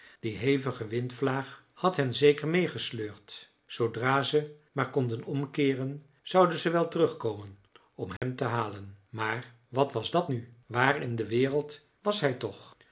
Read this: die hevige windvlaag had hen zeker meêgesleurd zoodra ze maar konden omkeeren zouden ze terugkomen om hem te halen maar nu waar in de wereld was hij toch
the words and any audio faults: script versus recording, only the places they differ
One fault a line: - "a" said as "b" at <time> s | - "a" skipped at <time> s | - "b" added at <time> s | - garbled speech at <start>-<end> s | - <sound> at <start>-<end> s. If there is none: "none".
- "wel" added at 6.7 s
- dropout at 8.2-8.2 s
- "wat was dat" added at 9.7 s